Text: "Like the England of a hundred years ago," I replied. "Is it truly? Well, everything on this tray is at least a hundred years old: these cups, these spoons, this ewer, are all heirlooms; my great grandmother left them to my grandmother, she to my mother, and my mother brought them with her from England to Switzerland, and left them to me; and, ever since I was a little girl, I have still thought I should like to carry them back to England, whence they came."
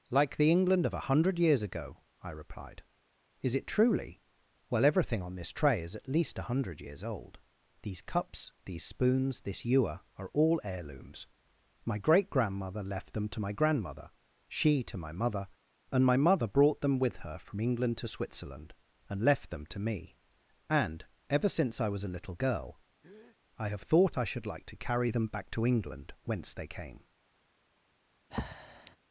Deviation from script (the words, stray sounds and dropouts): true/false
true